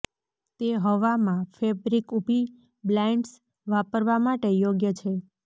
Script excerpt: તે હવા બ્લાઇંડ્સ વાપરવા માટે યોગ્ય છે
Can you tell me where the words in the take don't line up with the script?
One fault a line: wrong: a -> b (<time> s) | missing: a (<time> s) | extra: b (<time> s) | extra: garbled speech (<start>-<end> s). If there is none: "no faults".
extra: માં ફેબ્રિક ઊભી (1.2 s)